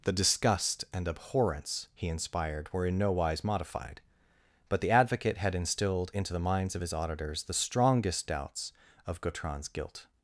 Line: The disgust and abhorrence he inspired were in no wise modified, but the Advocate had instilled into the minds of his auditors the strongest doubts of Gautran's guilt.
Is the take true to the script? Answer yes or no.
yes